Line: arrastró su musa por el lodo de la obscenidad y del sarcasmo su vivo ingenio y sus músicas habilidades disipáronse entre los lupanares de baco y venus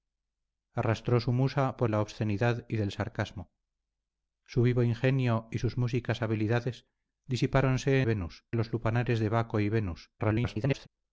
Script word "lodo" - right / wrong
wrong